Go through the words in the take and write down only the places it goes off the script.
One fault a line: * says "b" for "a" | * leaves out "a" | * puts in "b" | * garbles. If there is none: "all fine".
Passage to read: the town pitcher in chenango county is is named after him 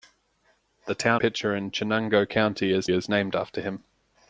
all fine